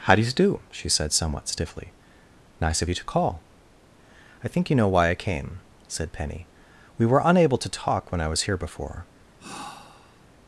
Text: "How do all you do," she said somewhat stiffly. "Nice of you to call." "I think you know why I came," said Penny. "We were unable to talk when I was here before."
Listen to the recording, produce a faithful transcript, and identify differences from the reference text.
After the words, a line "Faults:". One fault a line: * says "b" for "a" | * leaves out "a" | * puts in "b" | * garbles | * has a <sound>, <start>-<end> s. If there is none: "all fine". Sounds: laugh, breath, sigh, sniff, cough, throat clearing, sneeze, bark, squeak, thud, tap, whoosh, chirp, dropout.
"How do you do," she said somewhat stiffly. "Nice of you to call." "I think you know why I came," said Penny. "We were unable to talk when I was here before."
Faults:
* leaves out "all"
* has a sigh, 9.4-10.3 s